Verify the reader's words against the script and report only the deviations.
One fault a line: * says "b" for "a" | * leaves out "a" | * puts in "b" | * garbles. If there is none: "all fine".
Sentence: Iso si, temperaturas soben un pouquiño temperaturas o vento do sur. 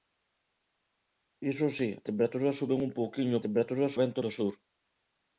all fine